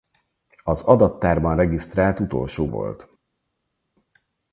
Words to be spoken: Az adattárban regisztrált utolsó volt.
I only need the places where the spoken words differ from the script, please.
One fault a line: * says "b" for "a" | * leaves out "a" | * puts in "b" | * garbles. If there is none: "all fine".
all fine